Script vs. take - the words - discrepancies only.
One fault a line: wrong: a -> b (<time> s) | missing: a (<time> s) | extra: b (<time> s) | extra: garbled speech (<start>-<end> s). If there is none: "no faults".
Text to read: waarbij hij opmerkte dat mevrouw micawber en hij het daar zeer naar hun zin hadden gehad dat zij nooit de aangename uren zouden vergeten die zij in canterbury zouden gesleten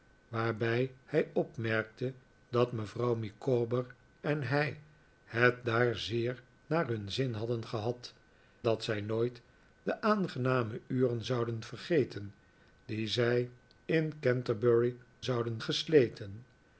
no faults